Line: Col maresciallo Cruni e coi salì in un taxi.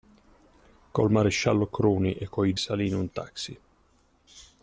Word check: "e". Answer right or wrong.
right